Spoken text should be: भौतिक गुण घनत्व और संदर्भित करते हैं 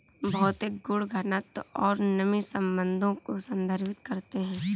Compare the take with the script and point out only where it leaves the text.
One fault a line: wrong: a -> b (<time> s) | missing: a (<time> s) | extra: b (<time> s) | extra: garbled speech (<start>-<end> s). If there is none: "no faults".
extra: नमी संबंधों को (2.0 s)